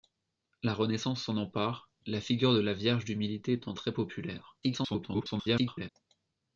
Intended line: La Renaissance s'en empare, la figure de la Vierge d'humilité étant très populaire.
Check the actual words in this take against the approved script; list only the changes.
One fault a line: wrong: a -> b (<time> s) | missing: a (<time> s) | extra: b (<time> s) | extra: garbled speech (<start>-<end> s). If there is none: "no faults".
extra: garbled speech (4.6-5.9 s)